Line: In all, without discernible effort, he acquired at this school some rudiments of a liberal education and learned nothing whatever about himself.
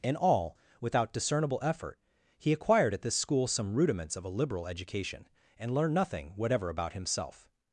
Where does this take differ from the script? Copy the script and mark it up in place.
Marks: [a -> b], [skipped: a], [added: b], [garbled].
In all, without discernible effort, he acquired at this school some rudiments of a liberal education and learned nothing whatever about himself.